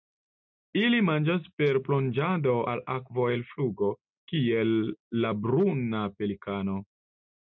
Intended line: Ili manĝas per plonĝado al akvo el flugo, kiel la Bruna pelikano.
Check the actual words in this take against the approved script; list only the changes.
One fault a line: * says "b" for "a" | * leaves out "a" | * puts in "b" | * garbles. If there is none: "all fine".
all fine